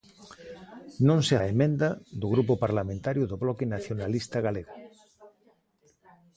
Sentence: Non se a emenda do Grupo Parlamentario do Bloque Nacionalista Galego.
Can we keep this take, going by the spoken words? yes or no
yes